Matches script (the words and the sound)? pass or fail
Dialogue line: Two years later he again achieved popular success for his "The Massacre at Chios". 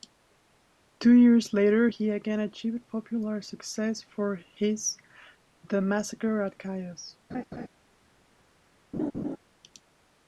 fail